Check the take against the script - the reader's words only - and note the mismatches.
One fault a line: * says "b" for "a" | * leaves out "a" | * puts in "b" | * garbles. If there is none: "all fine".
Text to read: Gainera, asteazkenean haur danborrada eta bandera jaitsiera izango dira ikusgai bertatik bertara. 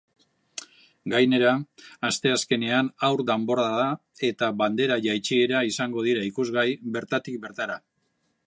all fine